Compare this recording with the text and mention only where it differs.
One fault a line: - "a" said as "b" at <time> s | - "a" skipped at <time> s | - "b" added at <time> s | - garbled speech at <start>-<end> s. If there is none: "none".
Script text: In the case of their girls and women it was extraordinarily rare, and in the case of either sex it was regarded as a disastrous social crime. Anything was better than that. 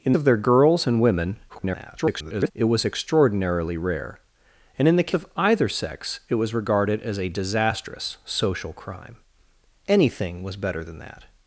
- "the case" skipped at 0.1 s
- garbled speech at 1.5-2.5 s
- "case" skipped at 5.1 s